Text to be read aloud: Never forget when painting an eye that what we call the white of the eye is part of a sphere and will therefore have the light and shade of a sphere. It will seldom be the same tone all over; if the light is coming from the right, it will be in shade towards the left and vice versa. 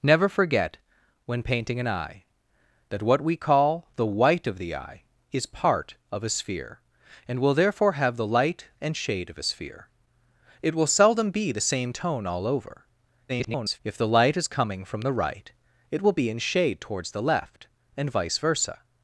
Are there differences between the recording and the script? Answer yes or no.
yes